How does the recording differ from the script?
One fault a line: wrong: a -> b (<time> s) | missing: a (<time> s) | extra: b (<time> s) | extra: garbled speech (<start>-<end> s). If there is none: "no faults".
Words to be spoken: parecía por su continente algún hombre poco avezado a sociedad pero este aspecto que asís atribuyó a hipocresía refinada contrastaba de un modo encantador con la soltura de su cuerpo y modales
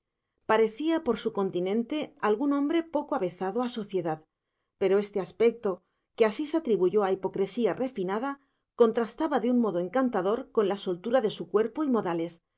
no faults